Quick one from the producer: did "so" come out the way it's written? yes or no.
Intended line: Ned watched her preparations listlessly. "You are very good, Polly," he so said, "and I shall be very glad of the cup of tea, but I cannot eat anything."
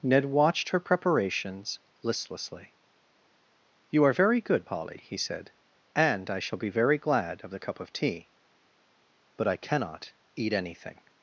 no